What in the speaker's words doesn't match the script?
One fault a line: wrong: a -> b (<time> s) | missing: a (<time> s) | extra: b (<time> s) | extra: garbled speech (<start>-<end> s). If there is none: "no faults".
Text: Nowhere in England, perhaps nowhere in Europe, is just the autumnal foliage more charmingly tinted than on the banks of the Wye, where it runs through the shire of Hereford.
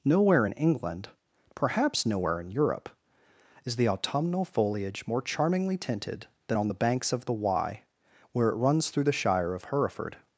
missing: just (3.8 s)